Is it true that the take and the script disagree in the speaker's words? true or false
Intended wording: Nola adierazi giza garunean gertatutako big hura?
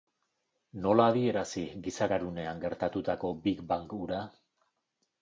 true